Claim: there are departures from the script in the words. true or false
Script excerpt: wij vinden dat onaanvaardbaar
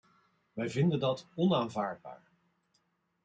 false